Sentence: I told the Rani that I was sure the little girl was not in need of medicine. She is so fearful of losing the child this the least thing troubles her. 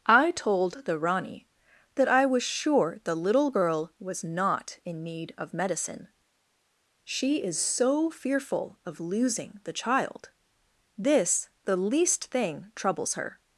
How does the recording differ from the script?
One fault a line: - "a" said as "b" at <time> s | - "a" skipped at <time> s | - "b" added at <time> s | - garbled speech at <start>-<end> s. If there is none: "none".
none